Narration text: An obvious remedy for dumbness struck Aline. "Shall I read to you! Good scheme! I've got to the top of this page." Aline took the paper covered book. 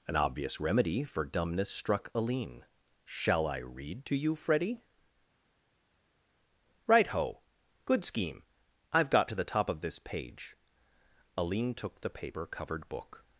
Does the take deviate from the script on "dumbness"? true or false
false